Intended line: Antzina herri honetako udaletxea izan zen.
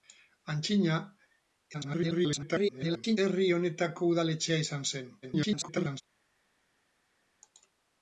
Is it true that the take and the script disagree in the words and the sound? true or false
true